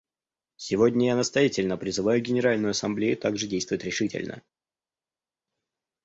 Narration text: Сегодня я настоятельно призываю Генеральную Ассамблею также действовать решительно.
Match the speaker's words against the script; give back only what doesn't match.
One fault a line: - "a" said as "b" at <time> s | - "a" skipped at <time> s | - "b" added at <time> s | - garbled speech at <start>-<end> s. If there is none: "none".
none